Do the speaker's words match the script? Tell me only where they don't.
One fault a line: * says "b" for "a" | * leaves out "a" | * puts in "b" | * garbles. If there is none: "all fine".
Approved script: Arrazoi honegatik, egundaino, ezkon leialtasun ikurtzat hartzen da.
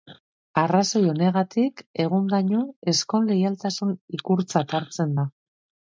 all fine